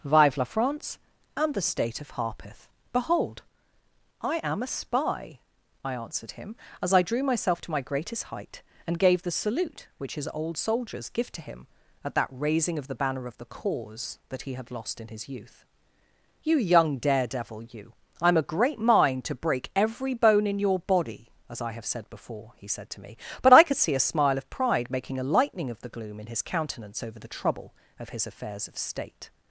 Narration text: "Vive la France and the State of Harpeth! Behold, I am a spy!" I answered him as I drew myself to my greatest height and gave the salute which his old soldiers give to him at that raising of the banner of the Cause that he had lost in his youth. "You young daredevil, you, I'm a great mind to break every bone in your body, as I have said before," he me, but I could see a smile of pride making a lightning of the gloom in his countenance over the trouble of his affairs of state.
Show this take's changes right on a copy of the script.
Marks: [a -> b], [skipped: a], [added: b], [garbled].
"Vive la France and the State of Harpeth! Behold, I am a spy!" I answered him as I drew myself to my greatest height and gave the salute which his old soldiers give to him at that raising of the banner of the Cause that he had lost in his youth. "You young daredevil, you, I'm a great mind to break every bone in your body, as I have said before," he [added: said to] me, but I could see a smile of pride making a lightning of the gloom in his countenance over the trouble of his affairs of state.